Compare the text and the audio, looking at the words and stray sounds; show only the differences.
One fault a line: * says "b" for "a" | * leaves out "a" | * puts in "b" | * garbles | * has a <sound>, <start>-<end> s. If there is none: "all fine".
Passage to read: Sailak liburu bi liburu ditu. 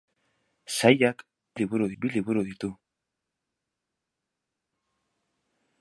all fine